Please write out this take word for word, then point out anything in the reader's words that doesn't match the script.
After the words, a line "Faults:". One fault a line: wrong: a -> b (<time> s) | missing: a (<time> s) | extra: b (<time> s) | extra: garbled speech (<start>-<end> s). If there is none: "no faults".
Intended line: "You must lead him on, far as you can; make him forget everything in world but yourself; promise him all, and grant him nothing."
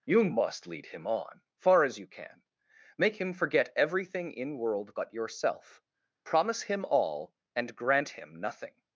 "You must lead him on, far as you can; make him forget everything in world but yourself; promise him all, and grant him nothing."
Faults:
no faults